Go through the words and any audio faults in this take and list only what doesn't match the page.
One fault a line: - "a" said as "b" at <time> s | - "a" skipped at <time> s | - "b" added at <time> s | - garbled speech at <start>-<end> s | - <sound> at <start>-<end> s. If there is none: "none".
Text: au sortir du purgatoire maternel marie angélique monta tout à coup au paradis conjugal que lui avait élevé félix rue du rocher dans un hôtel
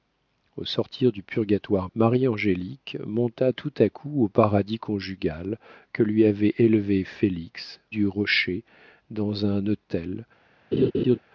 - "maternel" skipped at 1.9 s
- "rue" skipped at 7.8 s
- laugh at 10.7-11.2 s